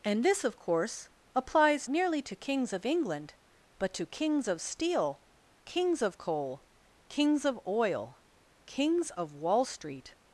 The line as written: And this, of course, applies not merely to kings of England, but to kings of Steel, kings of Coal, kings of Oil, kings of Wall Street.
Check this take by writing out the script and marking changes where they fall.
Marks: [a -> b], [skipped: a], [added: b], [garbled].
And this, of course, applies [skipped: not] merely to kings of England, but to kings of Steel, kings of Coal, kings of Oil, kings of Wall Street.